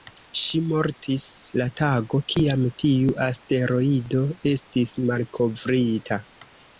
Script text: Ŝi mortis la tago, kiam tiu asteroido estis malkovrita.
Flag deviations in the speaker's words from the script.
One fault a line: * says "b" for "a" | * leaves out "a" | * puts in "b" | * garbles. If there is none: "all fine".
all fine